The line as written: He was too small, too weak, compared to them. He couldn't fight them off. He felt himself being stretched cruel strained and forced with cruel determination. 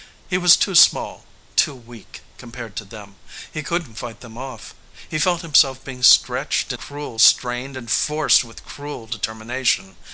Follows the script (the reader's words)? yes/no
yes